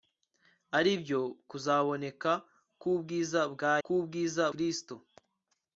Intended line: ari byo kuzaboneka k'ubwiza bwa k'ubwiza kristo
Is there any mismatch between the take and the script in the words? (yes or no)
no